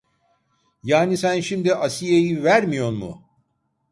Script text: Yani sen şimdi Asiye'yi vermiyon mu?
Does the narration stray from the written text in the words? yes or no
no